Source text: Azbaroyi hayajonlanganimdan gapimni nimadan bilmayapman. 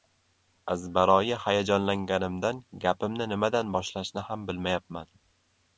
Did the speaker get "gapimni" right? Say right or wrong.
right